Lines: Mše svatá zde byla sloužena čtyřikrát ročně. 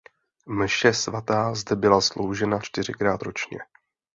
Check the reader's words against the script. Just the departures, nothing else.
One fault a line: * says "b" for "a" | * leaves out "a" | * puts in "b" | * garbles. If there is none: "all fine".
all fine